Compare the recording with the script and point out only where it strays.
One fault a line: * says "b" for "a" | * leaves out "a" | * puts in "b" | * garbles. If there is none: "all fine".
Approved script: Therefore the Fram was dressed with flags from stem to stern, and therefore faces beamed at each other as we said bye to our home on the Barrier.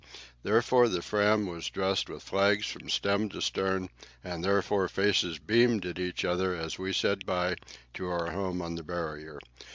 all fine